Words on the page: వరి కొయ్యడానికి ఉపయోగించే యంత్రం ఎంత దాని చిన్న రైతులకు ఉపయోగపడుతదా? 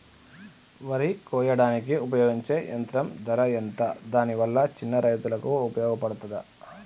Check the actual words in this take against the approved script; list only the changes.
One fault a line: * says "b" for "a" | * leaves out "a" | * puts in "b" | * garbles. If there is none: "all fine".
* puts in "ధర"
* puts in "వల్ల"